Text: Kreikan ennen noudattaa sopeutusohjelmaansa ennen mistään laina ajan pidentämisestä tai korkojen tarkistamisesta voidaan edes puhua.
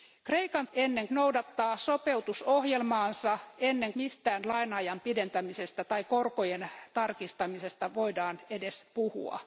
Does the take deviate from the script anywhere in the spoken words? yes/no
no